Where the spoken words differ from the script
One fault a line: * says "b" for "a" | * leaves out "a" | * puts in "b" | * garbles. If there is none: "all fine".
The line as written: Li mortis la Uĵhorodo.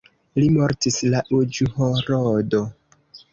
all fine